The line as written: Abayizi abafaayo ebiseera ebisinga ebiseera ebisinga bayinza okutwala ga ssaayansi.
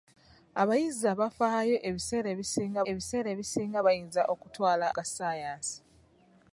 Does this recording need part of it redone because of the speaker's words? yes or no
no